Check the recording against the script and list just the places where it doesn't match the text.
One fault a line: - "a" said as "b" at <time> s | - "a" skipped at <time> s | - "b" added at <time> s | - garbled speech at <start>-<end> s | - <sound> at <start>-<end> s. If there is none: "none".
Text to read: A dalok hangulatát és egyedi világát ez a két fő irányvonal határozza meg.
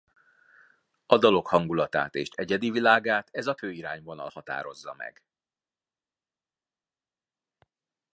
- "két" skipped at 3.5 s